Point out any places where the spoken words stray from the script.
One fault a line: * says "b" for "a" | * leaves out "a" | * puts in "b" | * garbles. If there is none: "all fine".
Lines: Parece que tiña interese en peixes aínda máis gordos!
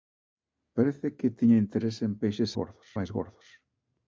* says "gordos" for "aínda"